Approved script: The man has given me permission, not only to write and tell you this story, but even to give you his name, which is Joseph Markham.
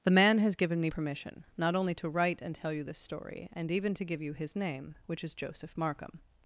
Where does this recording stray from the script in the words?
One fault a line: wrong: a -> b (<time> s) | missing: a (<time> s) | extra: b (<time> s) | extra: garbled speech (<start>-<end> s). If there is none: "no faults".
wrong: but -> and (3.5 s)